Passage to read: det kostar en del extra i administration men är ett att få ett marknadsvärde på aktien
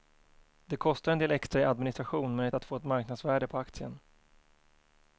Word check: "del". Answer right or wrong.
right